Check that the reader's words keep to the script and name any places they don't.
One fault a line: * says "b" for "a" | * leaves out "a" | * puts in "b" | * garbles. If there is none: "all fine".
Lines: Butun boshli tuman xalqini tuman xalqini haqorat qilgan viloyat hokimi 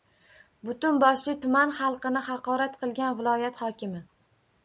* leaves out "tuman xalqini"